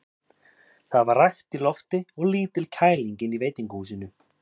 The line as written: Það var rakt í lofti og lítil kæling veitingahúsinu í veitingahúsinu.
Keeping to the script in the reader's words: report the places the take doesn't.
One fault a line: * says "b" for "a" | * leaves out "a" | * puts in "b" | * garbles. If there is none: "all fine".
* says "inni" for "veitingahúsinu"